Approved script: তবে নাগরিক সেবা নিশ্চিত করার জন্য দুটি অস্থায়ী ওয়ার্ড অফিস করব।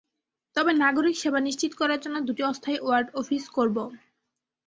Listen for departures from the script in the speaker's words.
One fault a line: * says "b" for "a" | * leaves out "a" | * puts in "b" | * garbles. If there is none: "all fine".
all fine